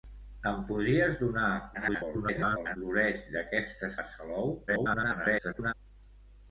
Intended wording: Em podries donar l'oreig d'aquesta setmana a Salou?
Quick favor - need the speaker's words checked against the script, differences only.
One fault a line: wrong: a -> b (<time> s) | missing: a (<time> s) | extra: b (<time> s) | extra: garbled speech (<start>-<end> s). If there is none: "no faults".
extra: garbled speech (1.7-2.8 s)
missing: setmana (3.9 s)
extra: garbled speech (4.7-5.7 s)